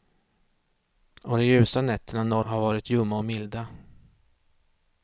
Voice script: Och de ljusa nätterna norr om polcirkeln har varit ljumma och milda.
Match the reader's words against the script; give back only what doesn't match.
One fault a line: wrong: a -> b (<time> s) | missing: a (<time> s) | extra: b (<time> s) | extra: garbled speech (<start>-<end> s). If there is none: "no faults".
missing: om polcirkeln (2.5 s)